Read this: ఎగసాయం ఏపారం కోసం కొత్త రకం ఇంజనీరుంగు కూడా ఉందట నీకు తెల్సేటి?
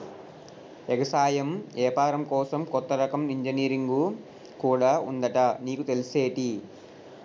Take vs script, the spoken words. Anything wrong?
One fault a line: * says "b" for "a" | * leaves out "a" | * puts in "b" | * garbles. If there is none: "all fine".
all fine